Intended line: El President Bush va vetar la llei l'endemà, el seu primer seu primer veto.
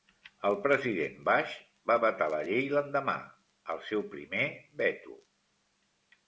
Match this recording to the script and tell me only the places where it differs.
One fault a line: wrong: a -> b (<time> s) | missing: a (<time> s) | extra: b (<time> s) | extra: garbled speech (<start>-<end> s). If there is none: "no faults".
missing: seu primer (4.5 s)